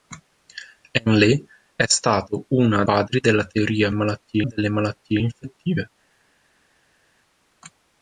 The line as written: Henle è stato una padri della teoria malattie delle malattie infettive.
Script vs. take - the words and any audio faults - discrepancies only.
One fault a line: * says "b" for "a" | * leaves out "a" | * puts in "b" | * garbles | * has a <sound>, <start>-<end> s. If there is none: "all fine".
all fine